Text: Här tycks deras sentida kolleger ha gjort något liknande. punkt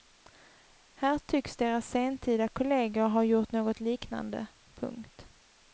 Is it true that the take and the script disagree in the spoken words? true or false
false